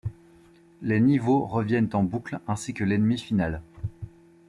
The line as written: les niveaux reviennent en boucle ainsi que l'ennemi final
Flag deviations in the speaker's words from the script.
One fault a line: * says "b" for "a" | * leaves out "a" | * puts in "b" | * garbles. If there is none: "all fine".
all fine